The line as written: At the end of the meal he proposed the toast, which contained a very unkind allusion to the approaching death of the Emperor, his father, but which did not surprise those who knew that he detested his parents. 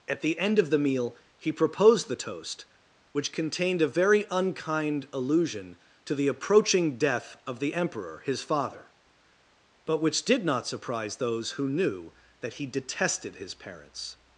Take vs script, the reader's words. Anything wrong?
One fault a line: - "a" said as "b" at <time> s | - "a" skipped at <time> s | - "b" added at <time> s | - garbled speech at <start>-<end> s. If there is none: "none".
none